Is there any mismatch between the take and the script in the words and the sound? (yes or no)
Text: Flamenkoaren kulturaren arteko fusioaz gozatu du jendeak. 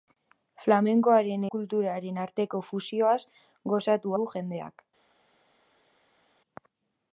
no